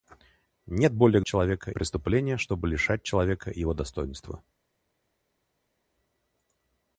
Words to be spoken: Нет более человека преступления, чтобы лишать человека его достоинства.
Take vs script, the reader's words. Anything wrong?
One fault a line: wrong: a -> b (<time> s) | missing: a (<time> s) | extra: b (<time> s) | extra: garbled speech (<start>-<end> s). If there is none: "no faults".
no faults